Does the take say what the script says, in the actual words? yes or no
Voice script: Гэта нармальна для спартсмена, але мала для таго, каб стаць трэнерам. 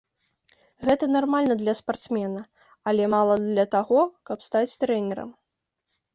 yes